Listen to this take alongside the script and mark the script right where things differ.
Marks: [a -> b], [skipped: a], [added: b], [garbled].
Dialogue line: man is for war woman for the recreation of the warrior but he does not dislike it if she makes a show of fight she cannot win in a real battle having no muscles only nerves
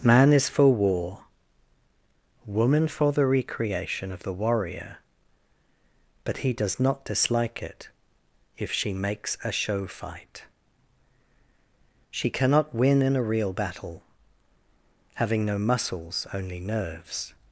man is for war woman for the recreation of the warrior but he does not dislike it if she makes a show [skipped: of] fight she cannot win in a real battle having no muscles only nerves